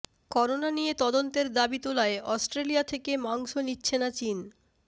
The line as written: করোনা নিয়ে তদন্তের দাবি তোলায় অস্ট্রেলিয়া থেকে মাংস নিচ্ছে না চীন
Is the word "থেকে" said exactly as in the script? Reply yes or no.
yes